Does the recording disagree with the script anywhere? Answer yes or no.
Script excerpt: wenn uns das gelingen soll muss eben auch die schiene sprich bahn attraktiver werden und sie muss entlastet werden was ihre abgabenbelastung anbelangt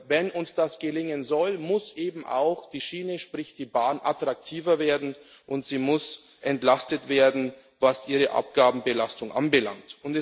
yes